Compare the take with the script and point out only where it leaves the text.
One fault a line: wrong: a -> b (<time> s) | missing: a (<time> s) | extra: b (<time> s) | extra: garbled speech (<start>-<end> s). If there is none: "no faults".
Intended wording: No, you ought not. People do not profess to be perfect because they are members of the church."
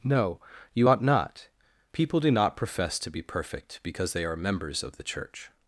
no faults